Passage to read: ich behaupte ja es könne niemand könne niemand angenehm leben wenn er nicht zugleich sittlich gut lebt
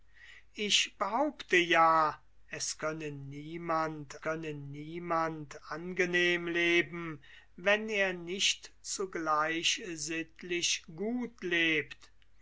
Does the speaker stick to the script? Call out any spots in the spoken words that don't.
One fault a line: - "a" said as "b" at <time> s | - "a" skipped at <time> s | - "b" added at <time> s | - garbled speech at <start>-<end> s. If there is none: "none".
none